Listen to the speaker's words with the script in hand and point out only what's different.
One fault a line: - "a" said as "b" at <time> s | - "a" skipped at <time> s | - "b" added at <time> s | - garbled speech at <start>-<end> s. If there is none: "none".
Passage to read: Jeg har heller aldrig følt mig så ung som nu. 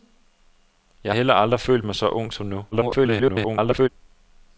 - "har" skipped at 1.1 s
- garbled speech at 2.7-3.9 s